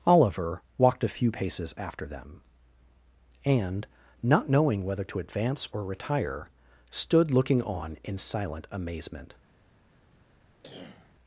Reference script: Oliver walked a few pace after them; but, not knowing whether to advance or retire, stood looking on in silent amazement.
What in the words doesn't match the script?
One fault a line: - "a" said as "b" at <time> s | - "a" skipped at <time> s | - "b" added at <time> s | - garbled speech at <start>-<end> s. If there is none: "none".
- "pace" said as "paces" at 1.3 s
- "but" said as "and" at 3.5 s